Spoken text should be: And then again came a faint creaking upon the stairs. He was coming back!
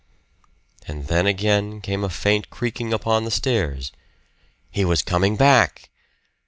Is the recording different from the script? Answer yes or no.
no